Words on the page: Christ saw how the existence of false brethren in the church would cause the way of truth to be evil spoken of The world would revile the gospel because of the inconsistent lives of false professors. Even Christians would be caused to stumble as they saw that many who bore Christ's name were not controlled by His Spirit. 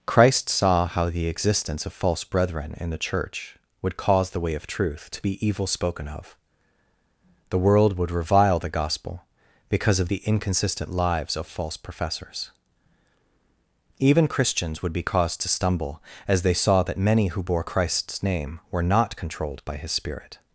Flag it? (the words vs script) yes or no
no